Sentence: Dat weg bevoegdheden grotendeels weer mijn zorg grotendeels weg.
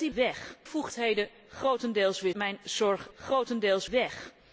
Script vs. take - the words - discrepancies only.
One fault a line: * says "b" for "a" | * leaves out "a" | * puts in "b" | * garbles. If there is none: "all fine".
all fine